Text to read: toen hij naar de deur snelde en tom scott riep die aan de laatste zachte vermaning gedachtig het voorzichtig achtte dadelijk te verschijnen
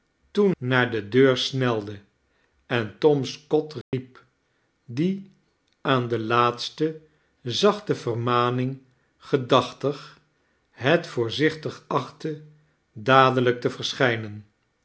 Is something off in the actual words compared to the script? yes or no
yes